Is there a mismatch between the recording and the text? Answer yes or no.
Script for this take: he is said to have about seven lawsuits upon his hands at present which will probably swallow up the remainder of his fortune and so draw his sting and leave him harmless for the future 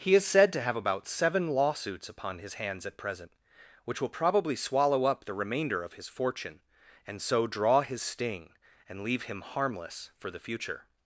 no